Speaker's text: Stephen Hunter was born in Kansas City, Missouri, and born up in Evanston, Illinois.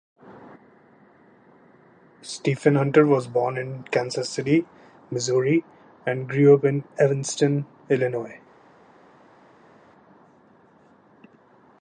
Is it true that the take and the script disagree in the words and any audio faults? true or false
true